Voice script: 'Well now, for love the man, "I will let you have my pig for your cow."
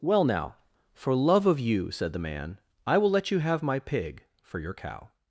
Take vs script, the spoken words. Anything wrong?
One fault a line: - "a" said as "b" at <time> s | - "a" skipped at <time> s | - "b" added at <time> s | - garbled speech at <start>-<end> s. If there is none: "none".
- "of you said" added at 1.4 s